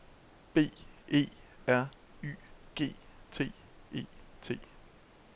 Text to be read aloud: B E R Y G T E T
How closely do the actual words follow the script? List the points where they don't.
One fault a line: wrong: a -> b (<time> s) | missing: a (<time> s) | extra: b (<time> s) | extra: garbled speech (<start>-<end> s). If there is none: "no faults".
no faults